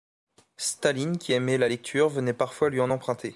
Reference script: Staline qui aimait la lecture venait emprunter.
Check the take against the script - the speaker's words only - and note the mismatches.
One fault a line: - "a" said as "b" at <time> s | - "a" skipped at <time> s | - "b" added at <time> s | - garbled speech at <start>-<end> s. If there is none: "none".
- "parfois lui en" added at 2.3 s